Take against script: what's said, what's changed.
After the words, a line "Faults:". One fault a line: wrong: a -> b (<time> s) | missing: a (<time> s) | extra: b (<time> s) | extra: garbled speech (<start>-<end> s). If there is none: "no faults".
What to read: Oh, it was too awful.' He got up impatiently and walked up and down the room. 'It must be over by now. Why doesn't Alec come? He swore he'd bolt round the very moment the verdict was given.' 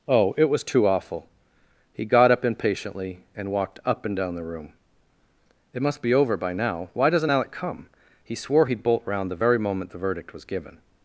Oh, it was too awful.' He got up impatiently and walked up and down the room. 'It must be over by now. Why doesn't Alec come? He swore he'd bolt round the very moment the verdict was given.'
Faults:
no faults